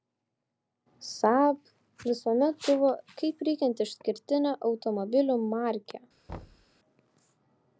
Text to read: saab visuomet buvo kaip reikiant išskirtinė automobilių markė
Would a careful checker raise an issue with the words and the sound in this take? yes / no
yes